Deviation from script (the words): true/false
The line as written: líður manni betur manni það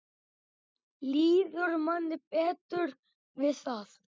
true